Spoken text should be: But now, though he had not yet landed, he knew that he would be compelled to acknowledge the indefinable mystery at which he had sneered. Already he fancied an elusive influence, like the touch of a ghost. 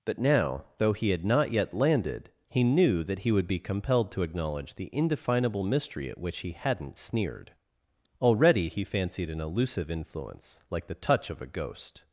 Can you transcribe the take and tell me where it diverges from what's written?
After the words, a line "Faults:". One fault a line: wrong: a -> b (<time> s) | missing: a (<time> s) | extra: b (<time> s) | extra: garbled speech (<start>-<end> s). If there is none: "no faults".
But now, though he had not yet landed, he knew that he would be compelled to acknowledge the indefinable mystery at which he hadn't sneered. Already he fancied an elusive influence, like the touch of a ghost.
Faults:
wrong: had -> hadn't (6.5 s)